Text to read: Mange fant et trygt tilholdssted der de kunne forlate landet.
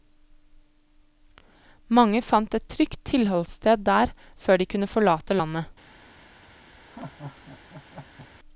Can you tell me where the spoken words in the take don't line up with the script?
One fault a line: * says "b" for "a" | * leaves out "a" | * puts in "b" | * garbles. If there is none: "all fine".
* puts in "før"